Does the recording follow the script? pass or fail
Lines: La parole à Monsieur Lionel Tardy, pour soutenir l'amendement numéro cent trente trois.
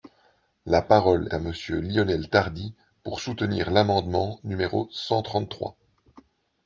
pass